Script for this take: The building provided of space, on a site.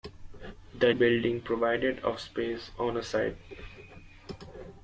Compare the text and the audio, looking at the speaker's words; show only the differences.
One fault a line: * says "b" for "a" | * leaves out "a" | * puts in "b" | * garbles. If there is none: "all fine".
all fine